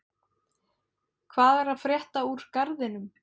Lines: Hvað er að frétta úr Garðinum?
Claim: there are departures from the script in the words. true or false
false